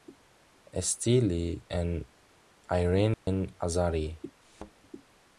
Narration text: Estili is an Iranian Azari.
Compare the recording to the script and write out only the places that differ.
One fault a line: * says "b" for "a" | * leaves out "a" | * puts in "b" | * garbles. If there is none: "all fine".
* leaves out "is"